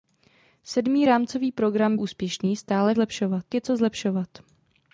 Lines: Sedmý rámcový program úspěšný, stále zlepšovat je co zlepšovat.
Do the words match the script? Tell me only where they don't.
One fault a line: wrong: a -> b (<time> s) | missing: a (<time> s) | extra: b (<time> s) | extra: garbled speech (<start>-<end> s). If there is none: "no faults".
no faults